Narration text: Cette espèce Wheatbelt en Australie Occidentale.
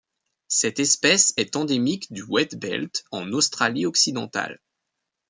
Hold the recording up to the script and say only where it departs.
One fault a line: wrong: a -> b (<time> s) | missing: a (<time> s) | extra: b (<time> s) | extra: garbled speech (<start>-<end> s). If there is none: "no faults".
extra: est endémique du (1.3 s)